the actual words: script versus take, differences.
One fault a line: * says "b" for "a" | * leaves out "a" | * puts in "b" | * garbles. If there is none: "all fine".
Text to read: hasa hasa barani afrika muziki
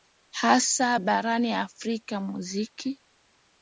* leaves out "hasa"